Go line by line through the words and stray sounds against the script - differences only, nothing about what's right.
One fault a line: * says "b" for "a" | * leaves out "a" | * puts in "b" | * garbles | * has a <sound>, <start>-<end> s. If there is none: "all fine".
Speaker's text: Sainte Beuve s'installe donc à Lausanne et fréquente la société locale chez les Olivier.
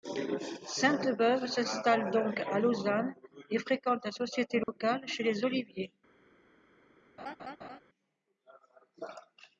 * has a dropout, 4.6-4.7 s
* has a laugh, 7.2-7.8 s